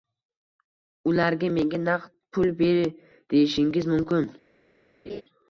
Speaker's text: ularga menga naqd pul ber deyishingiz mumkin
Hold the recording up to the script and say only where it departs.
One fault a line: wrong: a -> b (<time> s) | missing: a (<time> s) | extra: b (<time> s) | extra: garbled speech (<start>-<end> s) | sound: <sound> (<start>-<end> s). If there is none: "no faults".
sound: laugh (5.1-5.2 s)